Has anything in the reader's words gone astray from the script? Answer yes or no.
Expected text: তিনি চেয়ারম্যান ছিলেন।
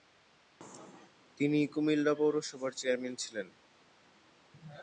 yes